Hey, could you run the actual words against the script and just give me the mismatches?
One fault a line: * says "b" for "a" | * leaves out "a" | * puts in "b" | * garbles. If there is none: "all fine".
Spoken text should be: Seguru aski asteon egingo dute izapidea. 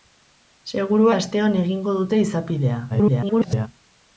* leaves out "aski"
* garbles